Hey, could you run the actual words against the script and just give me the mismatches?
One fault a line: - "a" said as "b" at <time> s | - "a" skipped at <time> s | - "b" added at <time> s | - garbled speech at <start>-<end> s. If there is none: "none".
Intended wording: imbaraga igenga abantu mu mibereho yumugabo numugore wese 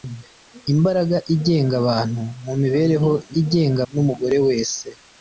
- "yumugabo" said as "igenga" at 3.4 s